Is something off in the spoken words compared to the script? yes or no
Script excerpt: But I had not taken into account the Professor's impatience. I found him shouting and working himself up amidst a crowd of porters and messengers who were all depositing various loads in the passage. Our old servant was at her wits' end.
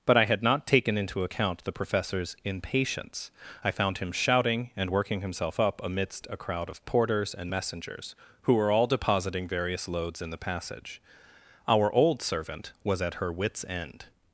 no